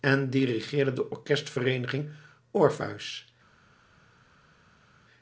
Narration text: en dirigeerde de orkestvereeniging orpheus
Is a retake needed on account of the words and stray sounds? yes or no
no